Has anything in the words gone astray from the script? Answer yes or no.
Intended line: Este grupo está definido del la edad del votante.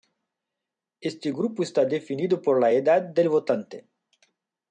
yes